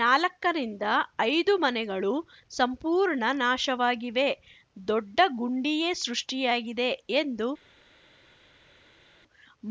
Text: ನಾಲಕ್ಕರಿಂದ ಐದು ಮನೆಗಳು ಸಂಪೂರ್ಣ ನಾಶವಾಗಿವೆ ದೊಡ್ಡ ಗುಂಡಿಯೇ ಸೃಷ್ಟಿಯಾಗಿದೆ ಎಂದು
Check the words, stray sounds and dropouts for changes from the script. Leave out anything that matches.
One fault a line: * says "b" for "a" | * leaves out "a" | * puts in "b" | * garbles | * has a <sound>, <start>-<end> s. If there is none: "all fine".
all fine